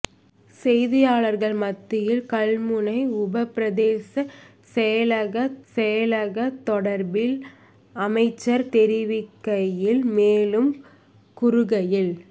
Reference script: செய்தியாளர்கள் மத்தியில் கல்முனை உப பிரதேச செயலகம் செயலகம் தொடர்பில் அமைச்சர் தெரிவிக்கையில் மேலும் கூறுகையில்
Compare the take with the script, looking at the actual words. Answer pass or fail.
pass